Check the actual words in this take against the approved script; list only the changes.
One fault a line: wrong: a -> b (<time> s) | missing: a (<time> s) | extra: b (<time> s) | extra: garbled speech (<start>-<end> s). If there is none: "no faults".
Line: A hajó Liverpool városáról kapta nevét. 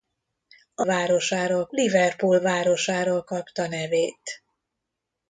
wrong: hajó -> városáról (0.8 s)